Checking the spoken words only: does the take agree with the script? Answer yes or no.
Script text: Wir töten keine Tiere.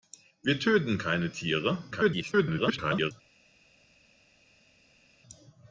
no